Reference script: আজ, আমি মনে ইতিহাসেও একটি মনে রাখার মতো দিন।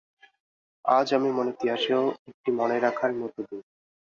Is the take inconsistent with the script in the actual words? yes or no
no